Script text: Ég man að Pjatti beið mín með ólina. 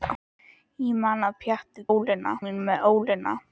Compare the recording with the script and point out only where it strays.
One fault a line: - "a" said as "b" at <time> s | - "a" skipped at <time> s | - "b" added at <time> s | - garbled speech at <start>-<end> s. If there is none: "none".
- "beið" said as "ólina" at 1.9 s